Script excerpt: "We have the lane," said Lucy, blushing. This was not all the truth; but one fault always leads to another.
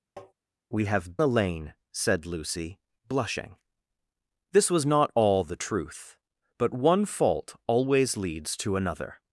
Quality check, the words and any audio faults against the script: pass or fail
fail